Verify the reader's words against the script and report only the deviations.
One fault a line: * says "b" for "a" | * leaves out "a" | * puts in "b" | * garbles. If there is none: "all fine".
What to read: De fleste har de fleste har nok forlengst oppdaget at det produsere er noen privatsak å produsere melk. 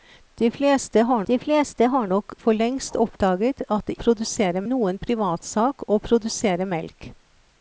all fine